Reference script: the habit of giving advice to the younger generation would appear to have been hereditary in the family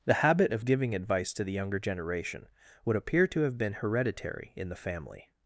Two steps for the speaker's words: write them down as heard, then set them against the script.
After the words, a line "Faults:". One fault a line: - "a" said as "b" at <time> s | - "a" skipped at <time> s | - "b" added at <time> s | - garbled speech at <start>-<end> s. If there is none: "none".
the habit of giving advice to the younger generation would appear to have been hereditary in the family
Faults:
none